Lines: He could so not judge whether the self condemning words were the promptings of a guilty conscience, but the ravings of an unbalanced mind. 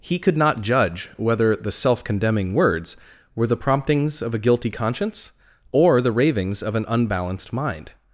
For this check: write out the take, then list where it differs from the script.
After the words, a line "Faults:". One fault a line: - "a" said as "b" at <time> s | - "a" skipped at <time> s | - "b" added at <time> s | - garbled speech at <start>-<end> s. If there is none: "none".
He could not judge whether the self condemning words were the promptings of a guilty conscience, or the ravings of an unbalanced mind.
Faults:
- "so" skipped at 0.3 s
- "but" said as "or" at 5.7 s